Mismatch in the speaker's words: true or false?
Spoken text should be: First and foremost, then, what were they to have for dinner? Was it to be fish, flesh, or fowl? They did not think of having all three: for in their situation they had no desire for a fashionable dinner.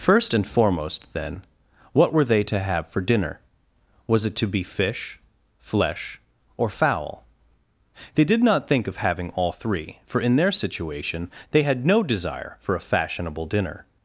false